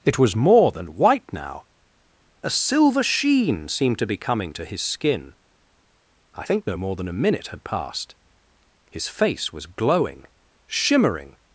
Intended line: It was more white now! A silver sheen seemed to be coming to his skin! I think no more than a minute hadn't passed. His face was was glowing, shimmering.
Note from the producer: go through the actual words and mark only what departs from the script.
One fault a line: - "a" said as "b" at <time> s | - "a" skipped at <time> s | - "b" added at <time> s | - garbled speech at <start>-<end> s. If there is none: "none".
- "than" added at 0.7 s
- "hadn't" said as "had" at 7.5 s
- "was" skipped at 9.7 s